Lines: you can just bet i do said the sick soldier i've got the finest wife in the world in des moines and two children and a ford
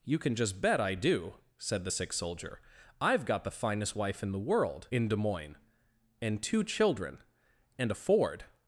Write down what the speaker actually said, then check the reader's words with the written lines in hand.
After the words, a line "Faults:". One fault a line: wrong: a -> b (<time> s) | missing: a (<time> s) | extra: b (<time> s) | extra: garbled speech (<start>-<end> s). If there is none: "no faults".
you can just bet i do said the sick soldier i've got the finest wife in the world in des moines and two children and a ford
Faults:
no faults